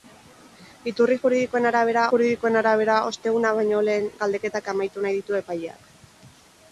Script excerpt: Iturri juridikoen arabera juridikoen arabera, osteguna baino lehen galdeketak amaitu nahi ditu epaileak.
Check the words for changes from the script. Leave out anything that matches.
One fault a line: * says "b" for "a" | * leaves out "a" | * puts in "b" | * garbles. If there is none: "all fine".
all fine